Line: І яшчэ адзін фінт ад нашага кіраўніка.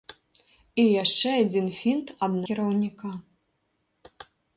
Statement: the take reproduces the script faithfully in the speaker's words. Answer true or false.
false